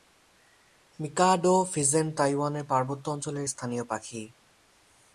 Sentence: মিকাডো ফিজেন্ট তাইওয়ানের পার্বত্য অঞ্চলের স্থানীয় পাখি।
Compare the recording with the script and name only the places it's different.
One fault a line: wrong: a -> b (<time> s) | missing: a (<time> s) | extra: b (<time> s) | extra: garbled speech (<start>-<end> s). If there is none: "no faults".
no faults